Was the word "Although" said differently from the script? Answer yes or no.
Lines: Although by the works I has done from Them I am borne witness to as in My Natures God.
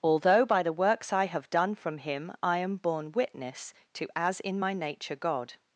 no